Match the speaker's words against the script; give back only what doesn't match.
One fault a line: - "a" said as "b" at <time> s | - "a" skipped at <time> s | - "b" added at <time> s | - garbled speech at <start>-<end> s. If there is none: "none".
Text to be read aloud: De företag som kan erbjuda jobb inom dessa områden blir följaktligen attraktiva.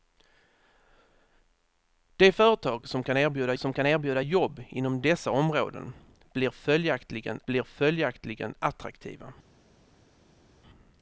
- "som kan erbjuda" added at 3.6 s
- "blir följaktligen" added at 7.5 s